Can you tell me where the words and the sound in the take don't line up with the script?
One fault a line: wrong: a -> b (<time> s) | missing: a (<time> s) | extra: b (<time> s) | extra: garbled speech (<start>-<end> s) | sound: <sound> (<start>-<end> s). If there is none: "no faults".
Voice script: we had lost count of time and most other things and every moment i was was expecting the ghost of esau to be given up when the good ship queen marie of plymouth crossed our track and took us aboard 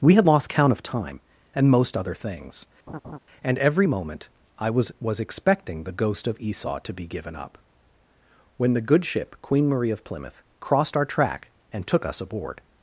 sound: laugh (2.9-3.2 s)